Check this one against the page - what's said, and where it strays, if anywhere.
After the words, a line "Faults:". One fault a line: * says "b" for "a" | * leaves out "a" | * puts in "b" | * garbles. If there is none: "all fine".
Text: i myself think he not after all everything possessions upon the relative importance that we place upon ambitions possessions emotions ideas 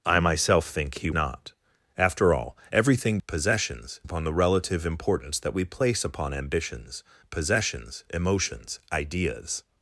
i myself think he not after all everything possessions upon the relative importance that we place upon ambitions possessions emotions ideas
Faults:
all fine